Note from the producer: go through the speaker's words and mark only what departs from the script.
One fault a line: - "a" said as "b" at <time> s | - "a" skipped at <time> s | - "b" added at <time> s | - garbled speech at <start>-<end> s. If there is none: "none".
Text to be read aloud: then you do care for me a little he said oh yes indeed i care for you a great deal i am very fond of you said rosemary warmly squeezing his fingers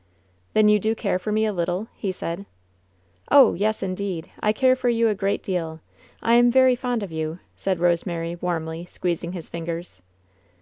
none